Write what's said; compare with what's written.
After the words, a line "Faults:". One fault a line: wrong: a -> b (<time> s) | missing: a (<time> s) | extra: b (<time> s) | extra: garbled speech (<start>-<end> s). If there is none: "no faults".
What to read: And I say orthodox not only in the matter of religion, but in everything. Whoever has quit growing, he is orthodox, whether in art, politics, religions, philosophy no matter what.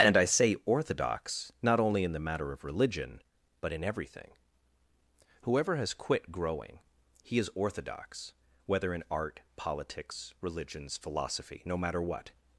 And I say orthodox not only in the matter of religion, but in everything. Whoever has quit growing, he is orthodox, whether in art, politics, religions, philosophy no matter what.
Faults:
no faults